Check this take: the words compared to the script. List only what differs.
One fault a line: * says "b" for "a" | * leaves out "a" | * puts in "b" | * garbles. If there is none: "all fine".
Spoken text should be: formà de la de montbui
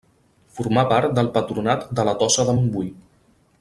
* puts in "part del patronat"
* puts in "tossa"